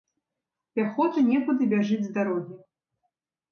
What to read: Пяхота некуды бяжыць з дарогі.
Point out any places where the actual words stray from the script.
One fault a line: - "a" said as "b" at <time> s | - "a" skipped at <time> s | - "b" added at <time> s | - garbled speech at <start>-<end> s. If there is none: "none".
none